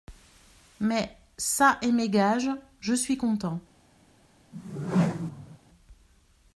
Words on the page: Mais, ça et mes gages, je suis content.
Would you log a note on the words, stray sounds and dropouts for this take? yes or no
yes